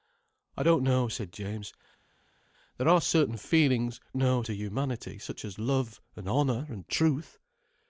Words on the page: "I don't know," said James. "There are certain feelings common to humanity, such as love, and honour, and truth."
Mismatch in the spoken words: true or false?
true